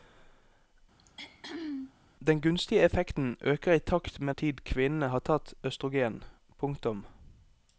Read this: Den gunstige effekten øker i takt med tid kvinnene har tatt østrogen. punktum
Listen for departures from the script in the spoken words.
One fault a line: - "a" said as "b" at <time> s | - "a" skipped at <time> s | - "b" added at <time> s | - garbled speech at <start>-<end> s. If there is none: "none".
none